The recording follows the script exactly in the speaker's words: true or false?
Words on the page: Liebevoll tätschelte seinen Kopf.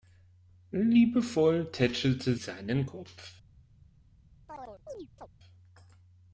true